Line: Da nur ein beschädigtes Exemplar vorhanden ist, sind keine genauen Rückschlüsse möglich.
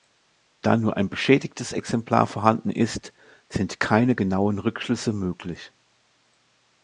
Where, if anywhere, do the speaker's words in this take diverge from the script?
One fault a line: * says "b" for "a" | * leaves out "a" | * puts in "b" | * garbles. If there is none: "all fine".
all fine